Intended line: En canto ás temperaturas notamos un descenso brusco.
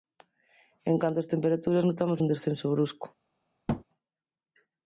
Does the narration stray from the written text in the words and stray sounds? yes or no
yes